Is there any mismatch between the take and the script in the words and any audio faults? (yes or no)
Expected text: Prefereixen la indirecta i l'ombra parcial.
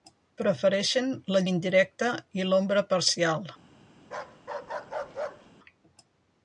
yes